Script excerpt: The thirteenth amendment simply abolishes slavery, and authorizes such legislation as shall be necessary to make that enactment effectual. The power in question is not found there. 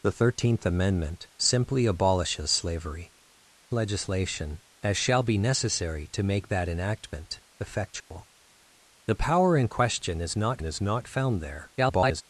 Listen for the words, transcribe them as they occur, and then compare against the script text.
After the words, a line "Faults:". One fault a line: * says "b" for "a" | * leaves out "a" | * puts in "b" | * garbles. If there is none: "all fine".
The thirteenth amendment simply abolishes slavery, legislation as shall be necessary to make that enactment effectual. The power in question is not is not found there. [garbled]
Faults:
* leaves out "and authorizes such"
* puts in "is not"
* garbles